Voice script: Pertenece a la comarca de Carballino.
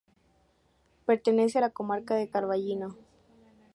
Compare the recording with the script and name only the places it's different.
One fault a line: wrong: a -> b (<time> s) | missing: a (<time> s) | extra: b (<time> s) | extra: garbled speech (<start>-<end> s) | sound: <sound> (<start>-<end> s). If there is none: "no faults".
no faults